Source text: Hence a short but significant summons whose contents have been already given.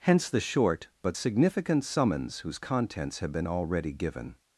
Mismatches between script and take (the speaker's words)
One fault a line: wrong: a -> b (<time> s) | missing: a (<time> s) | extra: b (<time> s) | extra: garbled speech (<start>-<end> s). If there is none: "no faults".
wrong: a -> the (0.3 s)